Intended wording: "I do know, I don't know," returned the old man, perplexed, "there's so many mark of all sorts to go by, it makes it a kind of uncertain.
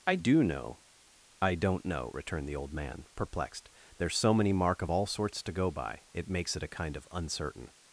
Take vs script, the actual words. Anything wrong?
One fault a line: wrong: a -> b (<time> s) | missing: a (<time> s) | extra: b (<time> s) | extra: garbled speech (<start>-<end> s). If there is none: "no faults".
no faults